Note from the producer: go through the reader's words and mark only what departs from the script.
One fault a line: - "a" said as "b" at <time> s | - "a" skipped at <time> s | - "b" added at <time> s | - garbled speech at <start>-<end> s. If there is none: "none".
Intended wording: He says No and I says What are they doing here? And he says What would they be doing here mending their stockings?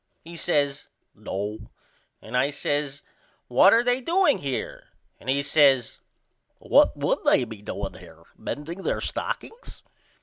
none